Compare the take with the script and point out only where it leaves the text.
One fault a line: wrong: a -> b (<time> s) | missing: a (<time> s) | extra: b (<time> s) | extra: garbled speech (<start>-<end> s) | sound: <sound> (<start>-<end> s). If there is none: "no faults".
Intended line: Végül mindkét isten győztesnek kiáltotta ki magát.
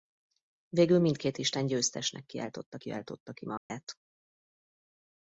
extra: kiáltotta (2.8 s)
sound: dropout (3.6-3.7 s)